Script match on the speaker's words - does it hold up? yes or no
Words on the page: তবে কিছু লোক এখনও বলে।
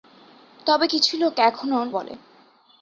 yes